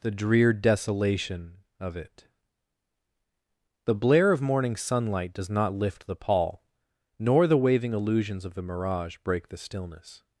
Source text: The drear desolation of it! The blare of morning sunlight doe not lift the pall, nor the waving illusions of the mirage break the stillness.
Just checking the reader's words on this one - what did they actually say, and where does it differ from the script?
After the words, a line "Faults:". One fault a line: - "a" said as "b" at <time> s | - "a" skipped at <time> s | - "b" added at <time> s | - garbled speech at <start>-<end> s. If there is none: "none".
The drear desolation of it! The blare of morning sunlight does not lift the pall, nor the waving illusions of the mirage break the stillness.
Faults:
- "doe" said as "does" at 5.3 s